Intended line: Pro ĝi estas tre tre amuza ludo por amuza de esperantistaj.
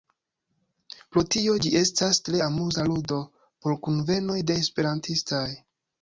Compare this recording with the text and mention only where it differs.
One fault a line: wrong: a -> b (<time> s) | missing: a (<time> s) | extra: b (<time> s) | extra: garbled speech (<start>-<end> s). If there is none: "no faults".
extra: tio (1.3 s)
missing: tre (2.4 s)
wrong: amuza -> kunvenoj (3.9 s)